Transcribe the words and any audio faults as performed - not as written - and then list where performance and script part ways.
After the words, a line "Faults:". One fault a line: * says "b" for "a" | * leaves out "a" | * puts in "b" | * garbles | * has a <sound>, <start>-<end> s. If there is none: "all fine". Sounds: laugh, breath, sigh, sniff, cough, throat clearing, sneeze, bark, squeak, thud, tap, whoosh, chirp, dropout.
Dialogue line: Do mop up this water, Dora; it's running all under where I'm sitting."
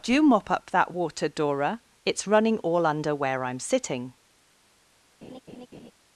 Do mop up that water, Dora; it's running all under where I'm sitting."
Faults:
* says "that" for "this"
* has a laugh, 5.2-5.9 s